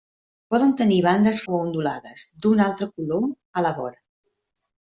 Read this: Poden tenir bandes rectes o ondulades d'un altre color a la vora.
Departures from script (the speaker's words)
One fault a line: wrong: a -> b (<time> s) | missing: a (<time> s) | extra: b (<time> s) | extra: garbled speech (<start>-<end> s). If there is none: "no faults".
missing: rectes (1.4 s)